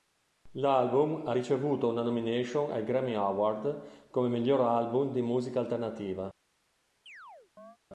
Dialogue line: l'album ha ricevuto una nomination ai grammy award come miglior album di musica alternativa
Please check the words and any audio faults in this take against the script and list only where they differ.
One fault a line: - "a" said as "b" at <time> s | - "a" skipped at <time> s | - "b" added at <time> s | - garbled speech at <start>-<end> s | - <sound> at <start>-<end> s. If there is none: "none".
- chirp at 7.1-7.8 s